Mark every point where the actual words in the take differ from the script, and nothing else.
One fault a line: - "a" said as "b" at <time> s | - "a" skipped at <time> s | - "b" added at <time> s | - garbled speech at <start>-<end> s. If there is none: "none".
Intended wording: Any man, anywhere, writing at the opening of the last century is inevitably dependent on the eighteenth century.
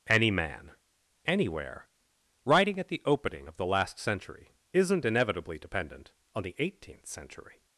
- "is" said as "isn't" at 4.7 s